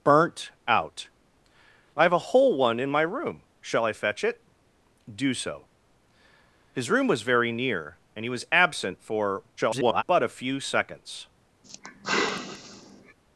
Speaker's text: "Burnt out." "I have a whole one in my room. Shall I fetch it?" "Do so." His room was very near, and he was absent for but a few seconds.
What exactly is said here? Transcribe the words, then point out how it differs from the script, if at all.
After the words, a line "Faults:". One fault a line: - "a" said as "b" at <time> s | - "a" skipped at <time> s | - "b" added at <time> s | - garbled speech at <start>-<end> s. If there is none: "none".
"Burnt out." "I have a whole one in my room. Shall I fetch it?" "Do so." His room was very near, and he was absent for [garbled] but a few seconds.
Faults:
- garbled speech at 9.6-10.0 s